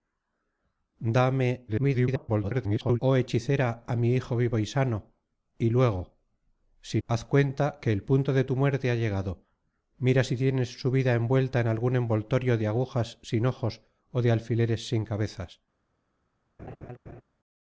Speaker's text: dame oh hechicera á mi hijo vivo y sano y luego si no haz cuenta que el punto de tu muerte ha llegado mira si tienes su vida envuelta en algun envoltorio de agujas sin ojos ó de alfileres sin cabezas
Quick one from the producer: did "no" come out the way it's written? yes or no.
no